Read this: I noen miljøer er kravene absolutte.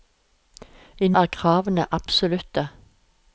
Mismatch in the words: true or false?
true